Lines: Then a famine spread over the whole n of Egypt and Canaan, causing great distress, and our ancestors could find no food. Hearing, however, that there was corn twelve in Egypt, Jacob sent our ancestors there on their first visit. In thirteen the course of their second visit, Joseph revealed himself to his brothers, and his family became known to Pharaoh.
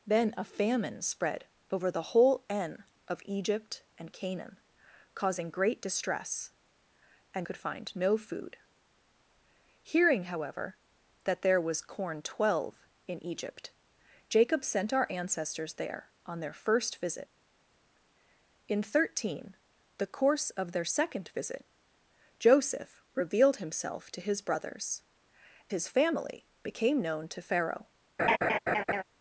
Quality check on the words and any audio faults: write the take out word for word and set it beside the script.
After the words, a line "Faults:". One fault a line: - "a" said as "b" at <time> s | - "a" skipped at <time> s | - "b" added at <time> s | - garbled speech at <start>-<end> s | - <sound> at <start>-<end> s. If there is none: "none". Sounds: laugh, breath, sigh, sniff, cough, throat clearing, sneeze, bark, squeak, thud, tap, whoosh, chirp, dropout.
Then a famine spread over the whole n of Egypt and Canaan, causing great distress, and could find no food. Hearing, however, that there was corn twelve in Egypt, Jacob sent our ancestors there on their first visit. In thirteen the course of their second visit, Joseph revealed himself to his brothers, his family became known to Pharaoh.
Faults:
- "our ancestors" skipped at 7.5 s
- "and" skipped at 25.0 s
- laugh at 28.2-29.0 s